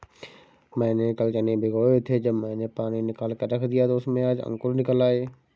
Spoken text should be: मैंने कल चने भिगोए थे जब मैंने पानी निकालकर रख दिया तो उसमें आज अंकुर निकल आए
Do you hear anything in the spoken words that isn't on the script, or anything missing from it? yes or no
no